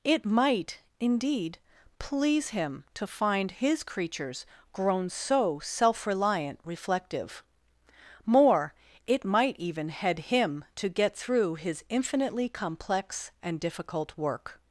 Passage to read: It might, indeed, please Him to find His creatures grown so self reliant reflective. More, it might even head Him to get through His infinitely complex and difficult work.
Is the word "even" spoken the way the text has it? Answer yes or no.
yes